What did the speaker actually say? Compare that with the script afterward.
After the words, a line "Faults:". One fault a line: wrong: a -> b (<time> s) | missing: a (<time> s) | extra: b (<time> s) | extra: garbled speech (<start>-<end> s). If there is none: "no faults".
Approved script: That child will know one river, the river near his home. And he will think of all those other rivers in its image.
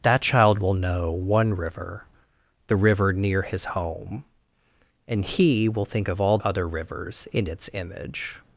That child will know one river, the river near his home. And he will think of all other rivers in its image.
Faults:
missing: those (6.4 s)